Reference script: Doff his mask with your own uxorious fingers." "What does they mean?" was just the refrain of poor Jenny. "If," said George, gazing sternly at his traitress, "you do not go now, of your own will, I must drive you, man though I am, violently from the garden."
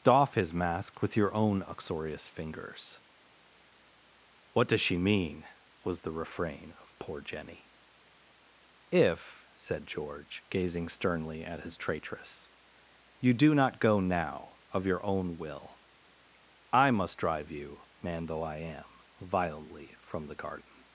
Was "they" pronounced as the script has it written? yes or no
no